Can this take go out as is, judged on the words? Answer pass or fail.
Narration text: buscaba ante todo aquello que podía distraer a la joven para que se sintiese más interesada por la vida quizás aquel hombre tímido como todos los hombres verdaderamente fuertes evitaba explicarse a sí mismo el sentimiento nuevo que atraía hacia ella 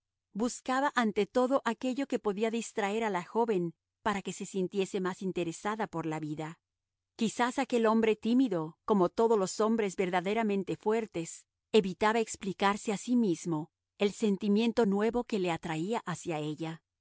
fail